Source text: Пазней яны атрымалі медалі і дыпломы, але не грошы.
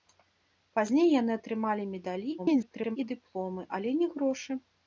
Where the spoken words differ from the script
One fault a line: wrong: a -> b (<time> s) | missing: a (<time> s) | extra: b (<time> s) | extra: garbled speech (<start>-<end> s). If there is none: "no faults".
extra: garbled speech (2.4-3.0 s)